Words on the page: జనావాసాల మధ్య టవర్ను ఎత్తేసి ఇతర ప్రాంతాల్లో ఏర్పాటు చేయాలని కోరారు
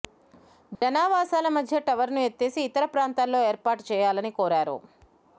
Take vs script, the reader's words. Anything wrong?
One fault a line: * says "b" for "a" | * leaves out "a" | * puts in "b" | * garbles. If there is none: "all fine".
all fine